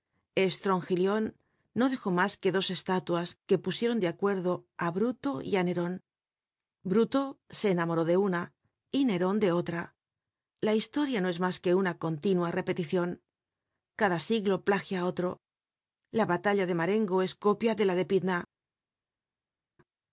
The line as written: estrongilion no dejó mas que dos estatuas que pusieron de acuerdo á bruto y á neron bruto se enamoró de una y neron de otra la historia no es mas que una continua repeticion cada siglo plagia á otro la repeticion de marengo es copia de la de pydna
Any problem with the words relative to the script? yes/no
yes